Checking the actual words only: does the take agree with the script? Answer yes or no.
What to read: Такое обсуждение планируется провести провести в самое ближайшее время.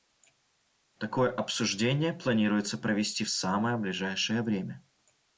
no